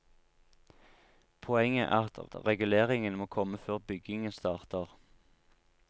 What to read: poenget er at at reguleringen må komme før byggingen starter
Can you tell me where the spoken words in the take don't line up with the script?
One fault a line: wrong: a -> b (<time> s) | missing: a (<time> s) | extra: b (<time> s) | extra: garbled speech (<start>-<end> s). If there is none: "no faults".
no faults